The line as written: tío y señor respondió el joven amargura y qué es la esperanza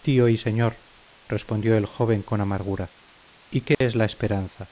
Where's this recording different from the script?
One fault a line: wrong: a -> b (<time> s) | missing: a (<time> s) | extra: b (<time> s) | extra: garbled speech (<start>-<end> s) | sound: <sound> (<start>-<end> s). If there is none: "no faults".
extra: con (2.2 s)
sound: dropout (3.7-3.8 s)